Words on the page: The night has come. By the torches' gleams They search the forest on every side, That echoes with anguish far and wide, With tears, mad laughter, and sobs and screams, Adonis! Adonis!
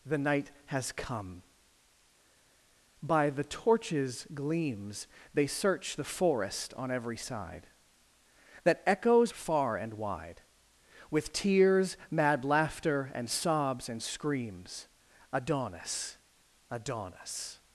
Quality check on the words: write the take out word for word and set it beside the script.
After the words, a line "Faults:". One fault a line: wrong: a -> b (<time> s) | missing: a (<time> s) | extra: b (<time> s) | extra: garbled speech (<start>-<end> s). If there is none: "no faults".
The night has come. By the torches' gleams They search the forest on every side, That echoes far and wide, With tears, mad laughter, and sobs and screams, Adonis! Adonis!
Faults:
missing: with anguish (9.3 s)